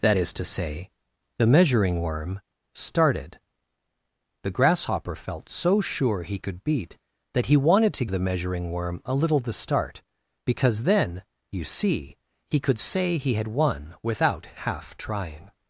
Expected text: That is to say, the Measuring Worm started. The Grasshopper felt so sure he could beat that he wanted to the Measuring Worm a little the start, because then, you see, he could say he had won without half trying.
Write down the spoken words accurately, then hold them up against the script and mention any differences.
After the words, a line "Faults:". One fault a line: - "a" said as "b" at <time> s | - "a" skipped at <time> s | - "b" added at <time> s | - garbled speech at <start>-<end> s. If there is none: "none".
That is to say, the Measuring Worm started. The Grasshopper felt so sure he could beat that he wanted to the Measuring Worm a little the start, because then, you see, he could say he had won without half trying.
Faults:
none